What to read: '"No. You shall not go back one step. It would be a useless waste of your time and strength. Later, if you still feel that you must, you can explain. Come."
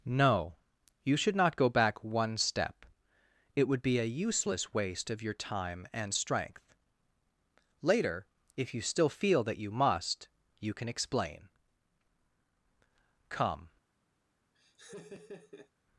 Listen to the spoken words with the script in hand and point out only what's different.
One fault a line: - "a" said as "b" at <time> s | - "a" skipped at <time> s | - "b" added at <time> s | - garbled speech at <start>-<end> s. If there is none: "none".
- "shall" said as "should" at 1.2 s